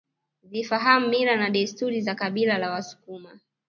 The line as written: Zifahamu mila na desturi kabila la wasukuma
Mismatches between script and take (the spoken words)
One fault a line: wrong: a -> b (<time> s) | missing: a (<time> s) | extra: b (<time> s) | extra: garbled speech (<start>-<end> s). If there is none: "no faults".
extra: za (2.0 s)